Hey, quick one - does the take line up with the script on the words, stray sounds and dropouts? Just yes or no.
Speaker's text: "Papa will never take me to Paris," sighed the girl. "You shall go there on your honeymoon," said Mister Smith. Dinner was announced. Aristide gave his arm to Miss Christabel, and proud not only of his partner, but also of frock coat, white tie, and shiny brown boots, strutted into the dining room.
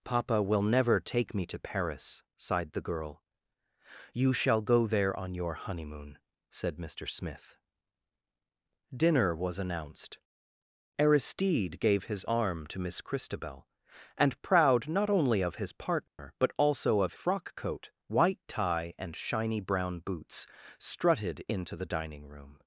no